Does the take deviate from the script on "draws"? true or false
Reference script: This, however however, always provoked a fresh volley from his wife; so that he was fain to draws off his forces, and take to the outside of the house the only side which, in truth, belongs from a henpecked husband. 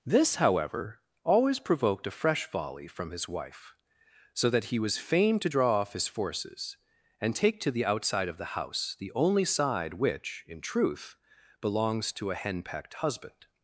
true